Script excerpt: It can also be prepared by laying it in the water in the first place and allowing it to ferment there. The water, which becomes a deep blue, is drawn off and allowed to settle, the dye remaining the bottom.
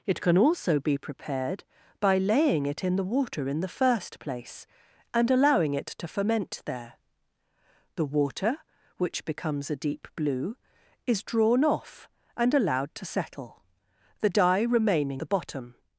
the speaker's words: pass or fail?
pass